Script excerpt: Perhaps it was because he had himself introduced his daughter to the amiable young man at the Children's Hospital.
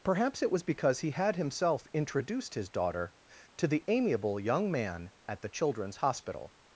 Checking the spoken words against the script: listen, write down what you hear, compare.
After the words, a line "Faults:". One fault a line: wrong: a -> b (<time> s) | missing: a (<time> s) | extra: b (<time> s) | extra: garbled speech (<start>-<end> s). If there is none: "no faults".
Perhaps it was because he had himself introduced his daughter to the amiable young man at the Children's Hospital.
Faults:
no faults